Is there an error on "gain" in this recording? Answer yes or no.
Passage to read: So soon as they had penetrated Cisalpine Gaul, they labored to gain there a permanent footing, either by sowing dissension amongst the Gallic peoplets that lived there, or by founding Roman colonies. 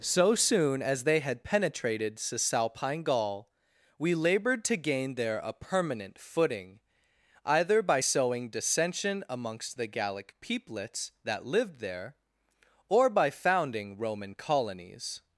no